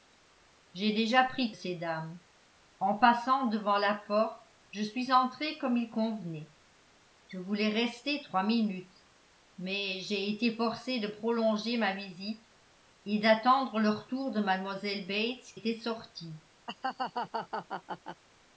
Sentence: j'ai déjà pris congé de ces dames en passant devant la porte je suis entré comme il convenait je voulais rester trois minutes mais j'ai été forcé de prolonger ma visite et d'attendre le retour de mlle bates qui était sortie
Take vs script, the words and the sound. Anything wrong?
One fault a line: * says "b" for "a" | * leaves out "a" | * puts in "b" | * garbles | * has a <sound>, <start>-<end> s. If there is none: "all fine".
* leaves out "congé de"
* leaves out "qui"
* has a laugh, 16.7-18.2 s